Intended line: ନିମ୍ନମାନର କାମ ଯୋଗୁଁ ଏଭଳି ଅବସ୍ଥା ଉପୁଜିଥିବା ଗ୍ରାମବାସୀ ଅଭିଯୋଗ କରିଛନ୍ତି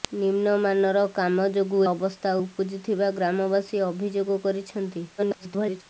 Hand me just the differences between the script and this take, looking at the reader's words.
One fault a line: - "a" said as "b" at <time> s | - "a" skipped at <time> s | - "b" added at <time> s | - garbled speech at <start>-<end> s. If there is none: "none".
- "ଏଭଳି" skipped at 1.8 s
- garbled speech at 5.2-5.8 s